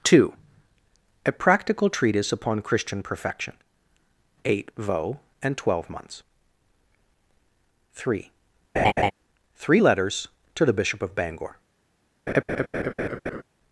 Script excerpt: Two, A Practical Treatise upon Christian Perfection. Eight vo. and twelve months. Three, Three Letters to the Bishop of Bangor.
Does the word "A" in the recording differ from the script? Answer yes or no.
no